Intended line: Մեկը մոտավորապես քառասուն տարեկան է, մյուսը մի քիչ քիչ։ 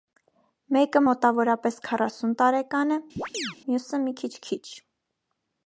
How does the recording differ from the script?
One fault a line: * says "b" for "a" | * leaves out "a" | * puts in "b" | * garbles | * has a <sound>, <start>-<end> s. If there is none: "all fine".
* has a chirp, 3.2-3.6 s